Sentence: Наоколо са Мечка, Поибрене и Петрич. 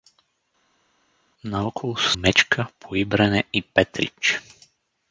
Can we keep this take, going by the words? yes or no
yes